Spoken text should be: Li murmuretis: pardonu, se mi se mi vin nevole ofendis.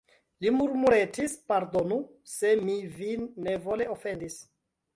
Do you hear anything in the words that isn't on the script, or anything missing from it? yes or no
yes